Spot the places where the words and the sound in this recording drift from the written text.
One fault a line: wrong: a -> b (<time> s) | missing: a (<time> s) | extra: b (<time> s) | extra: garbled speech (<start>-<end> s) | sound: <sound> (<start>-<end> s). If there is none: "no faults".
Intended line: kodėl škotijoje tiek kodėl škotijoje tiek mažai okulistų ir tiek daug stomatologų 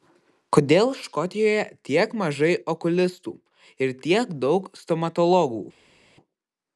missing: kodėl škotijoje tiek (2.1 s)